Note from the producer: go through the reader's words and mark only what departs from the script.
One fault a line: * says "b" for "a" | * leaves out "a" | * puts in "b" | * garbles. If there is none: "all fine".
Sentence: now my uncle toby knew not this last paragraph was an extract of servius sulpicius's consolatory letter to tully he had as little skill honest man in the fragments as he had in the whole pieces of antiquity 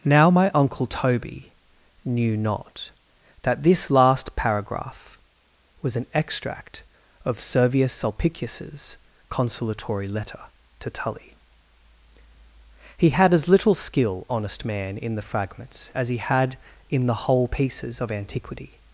* puts in "that"